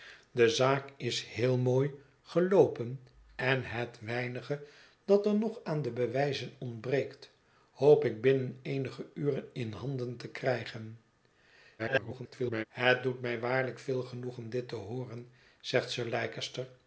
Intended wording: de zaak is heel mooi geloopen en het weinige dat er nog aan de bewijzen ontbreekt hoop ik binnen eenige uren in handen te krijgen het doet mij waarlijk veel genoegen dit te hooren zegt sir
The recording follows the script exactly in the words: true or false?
false